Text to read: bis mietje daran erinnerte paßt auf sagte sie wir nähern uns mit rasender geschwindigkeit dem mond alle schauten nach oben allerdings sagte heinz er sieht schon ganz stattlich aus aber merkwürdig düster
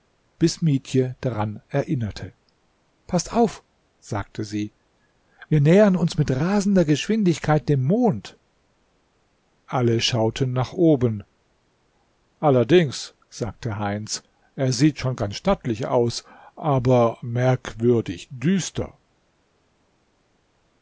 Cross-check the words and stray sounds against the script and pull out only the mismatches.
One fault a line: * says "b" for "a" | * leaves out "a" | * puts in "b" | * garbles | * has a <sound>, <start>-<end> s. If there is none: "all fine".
all fine